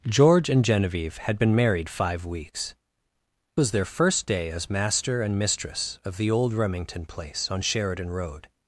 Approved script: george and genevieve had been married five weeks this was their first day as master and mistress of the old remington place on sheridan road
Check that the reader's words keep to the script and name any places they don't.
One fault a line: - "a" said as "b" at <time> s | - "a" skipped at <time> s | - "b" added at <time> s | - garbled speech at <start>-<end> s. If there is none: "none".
- "this" skipped at 2.7 s